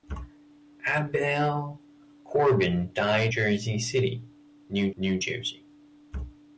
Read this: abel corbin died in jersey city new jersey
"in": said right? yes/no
no